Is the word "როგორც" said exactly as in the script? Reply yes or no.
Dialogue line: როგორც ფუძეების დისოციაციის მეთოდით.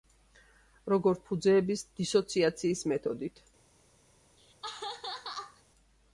yes